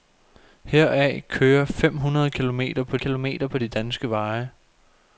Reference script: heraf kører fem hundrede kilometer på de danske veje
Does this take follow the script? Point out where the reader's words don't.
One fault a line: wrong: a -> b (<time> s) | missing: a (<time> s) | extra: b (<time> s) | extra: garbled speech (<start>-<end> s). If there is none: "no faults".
extra: kilometer på (3.0 s)